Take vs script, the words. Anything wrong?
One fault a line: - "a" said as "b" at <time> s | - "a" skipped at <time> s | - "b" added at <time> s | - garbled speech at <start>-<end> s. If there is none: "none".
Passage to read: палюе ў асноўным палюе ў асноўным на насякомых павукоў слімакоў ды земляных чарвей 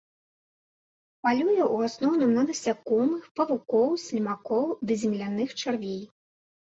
- "палюе ў асноўным" skipped at 2.3 s